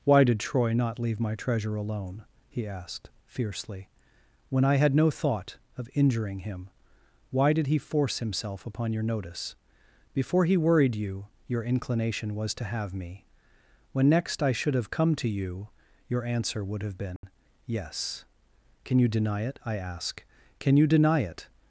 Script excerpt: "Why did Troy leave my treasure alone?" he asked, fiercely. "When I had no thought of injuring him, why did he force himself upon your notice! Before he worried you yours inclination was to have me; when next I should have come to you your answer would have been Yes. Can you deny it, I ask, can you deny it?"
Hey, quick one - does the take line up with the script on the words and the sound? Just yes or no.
no